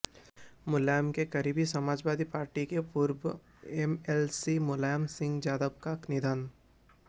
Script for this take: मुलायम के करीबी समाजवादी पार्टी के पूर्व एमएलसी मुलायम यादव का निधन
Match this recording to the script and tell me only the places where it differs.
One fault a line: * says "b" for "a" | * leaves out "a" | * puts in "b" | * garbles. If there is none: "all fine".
* puts in "सिंह"